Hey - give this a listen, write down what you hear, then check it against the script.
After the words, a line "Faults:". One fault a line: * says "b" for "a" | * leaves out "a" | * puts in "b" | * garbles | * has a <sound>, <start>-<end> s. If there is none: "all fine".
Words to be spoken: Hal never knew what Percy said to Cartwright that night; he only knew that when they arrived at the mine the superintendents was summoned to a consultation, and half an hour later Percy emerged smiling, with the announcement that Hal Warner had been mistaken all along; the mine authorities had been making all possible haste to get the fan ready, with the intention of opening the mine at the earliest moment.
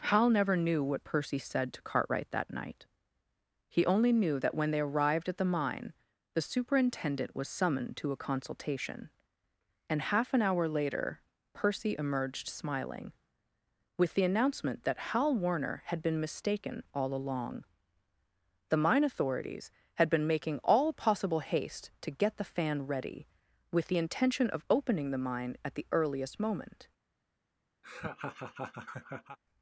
Hal never knew what Percy said to Cartwright that night; he only knew that when they arrived at the mine the superintendent was summoned to a consultation, and half an hour later Percy emerged smiling, with the announcement that Hal Warner had been mistaken all along; the mine authorities had been making all possible haste to get the fan ready, with the intention of opening the mine at the earliest moment.
Faults:
* says "superintendent" for "superintendents"
* has a laugh, 27.8-29.4 s